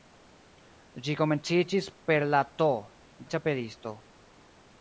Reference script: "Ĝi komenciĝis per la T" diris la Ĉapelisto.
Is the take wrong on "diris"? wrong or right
wrong